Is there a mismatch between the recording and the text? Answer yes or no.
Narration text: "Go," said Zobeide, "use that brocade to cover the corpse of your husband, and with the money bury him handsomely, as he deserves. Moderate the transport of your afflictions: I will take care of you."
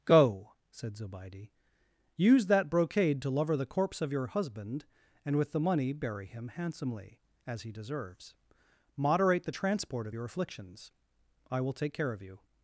yes